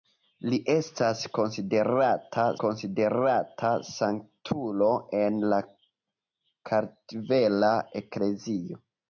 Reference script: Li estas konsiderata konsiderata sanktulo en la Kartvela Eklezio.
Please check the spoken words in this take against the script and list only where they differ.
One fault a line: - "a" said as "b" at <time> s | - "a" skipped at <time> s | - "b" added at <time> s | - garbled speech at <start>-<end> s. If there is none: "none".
none